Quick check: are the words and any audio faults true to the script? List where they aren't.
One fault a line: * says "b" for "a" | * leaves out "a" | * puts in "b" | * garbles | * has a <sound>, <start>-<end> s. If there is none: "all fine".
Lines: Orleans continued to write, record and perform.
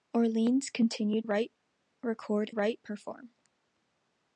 * leaves out "to"
* says "write" for "and"